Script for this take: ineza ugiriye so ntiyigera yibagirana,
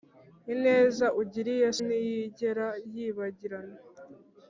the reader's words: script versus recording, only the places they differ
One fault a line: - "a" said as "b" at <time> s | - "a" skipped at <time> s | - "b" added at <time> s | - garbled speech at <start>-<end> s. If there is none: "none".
- "so" skipped at 1.7 s